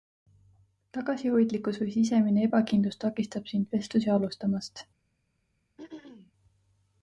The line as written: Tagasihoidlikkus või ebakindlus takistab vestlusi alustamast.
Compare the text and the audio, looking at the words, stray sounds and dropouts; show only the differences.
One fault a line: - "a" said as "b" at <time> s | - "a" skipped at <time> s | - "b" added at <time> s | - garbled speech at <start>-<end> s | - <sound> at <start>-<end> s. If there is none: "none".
- "sisemine" added at 2.0 s
- "sind" added at 3.5 s
- throat clearing at 5.8-6.3 s